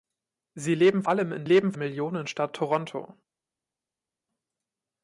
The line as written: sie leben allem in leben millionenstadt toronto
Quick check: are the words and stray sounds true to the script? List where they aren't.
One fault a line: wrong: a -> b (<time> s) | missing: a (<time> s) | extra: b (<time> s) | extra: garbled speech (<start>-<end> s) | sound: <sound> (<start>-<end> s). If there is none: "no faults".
no faults